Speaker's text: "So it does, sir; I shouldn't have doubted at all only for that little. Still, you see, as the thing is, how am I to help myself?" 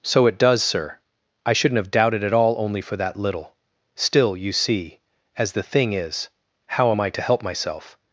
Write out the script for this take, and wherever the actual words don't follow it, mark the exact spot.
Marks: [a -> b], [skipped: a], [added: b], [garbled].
"So it does, sir; I shouldn't have doubted at all only for that little. Still, you see, as the thing is, how am I to help myself?"